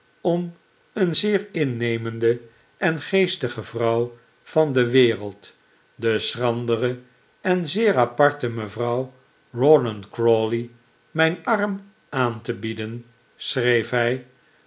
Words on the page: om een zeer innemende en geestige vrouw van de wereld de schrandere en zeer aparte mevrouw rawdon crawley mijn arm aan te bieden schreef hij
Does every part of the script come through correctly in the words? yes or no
yes